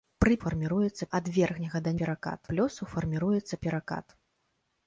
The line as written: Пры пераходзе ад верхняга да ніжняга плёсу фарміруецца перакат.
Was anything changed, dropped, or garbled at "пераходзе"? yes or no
yes